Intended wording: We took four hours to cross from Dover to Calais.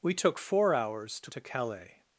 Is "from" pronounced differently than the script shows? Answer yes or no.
yes